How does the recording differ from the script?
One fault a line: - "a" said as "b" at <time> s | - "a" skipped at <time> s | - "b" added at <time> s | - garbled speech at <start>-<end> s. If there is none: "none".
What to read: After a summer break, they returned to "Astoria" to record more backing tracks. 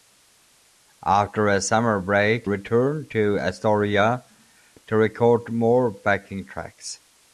- "they" skipped at 2.5 s